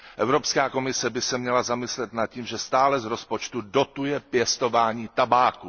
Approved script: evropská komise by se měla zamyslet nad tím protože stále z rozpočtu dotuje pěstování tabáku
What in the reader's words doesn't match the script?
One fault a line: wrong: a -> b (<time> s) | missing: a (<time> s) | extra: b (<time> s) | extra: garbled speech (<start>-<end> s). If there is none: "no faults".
wrong: protože -> že (2.5 s)